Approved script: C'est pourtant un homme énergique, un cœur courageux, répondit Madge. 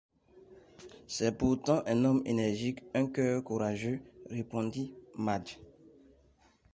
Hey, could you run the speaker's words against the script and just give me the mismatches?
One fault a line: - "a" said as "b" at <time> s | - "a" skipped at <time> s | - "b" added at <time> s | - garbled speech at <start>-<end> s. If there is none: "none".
none